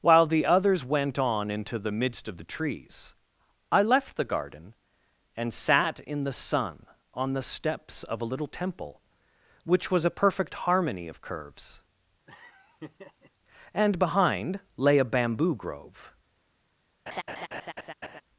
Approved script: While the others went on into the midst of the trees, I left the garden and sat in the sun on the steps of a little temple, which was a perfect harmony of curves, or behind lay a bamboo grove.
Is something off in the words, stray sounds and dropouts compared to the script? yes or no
yes